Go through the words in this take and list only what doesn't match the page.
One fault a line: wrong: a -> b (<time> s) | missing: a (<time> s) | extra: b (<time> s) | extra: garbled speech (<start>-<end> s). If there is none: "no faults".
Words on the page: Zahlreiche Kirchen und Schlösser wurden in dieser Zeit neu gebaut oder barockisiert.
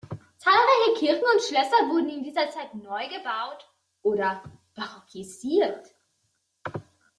no faults